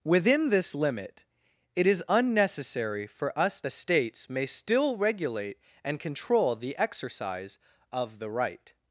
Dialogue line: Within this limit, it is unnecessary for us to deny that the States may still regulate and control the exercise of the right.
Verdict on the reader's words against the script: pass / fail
fail